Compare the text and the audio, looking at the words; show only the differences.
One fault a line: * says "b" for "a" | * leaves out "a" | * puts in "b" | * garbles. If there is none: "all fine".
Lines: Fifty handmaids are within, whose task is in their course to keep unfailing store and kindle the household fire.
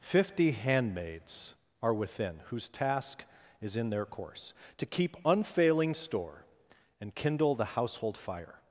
all fine